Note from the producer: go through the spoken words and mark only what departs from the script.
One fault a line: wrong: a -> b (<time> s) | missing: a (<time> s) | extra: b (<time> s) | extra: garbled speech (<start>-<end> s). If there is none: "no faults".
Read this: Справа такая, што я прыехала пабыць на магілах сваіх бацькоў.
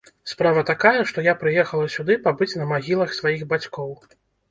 extra: сюды (1.9 s)